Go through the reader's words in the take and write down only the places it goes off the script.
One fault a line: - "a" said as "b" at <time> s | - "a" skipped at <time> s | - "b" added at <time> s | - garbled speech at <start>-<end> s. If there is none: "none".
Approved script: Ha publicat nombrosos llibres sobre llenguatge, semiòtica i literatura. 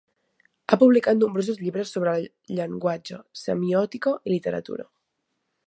none